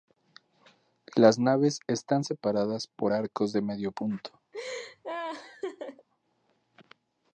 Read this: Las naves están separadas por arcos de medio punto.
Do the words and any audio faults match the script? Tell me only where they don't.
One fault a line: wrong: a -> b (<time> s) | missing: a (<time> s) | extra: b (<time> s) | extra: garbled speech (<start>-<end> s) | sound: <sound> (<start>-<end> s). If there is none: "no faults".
sound: laugh (4.5-6.1 s)